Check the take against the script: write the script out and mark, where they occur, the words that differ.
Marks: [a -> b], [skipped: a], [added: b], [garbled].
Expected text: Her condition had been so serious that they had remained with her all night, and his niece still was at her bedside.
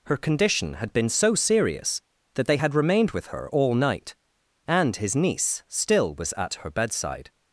Her condition had been so serious that they had remained with her all night, and his niece still was at her bedside.